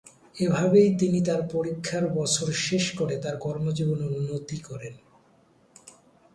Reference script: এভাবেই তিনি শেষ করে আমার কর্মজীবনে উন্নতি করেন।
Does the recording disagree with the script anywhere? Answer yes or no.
yes